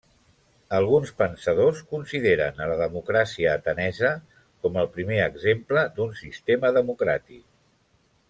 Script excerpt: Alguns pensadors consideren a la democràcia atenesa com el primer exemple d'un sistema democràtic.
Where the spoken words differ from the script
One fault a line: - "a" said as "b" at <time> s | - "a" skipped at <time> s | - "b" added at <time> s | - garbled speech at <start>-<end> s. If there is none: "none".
none